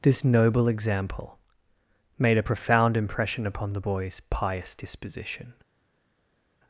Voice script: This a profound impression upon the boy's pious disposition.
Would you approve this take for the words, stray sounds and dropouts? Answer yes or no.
no